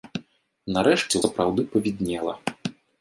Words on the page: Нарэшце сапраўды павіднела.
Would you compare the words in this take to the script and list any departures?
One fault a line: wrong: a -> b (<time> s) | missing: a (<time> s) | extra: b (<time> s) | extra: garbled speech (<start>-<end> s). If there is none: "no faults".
no faults